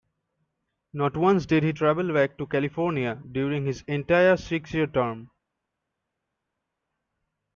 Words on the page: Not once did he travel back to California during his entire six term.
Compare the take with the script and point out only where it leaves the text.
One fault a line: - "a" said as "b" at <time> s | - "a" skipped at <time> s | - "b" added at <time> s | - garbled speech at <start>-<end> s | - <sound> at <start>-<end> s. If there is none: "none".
- "year" added at 4.7 s